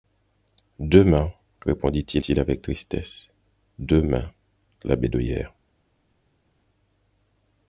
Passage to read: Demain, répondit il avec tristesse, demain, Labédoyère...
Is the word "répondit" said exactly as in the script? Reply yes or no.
yes